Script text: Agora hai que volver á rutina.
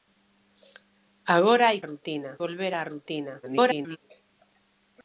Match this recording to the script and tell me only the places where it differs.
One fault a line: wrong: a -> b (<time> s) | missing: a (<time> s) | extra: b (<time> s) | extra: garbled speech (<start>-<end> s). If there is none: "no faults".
wrong: que -> rutina (1.9 s)
extra: garbled speech (3.4-4.0 s)